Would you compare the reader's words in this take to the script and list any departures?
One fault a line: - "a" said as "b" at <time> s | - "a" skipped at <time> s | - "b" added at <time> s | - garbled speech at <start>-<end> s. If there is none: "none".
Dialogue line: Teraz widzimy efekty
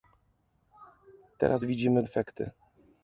none